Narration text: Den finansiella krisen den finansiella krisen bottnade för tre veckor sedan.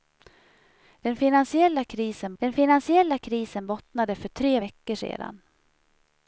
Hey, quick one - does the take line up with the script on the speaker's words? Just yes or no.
yes